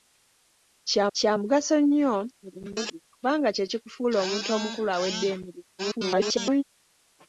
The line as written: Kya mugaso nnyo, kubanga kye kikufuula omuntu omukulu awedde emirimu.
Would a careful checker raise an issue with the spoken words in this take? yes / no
yes